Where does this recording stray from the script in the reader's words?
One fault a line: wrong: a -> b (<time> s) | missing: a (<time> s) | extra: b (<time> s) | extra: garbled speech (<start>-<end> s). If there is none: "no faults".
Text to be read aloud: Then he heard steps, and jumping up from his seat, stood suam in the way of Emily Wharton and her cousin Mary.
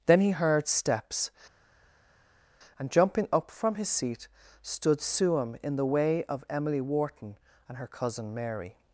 no faults